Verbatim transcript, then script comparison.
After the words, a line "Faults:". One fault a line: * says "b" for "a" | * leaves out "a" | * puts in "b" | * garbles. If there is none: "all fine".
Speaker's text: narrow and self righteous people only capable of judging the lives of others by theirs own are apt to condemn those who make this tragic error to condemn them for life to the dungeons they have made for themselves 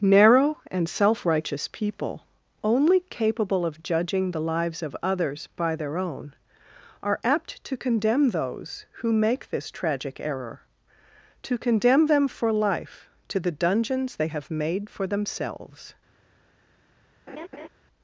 narrow and self righteous people only capable of judging the lives of others by their own are apt to condemn those who make this tragic error to condemn them for life to the dungeons they have made for themselves
Faults:
* says "their" for "theirs"